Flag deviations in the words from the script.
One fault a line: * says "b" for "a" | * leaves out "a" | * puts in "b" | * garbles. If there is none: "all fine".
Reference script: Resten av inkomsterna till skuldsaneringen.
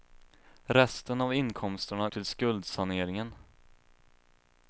all fine